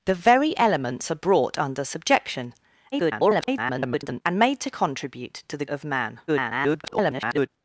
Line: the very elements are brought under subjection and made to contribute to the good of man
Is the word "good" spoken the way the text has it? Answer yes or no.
no